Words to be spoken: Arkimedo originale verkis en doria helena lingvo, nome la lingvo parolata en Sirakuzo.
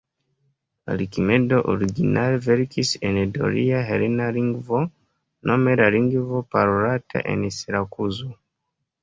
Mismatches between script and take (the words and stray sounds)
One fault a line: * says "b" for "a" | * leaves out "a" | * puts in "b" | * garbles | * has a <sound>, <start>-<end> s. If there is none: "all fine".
all fine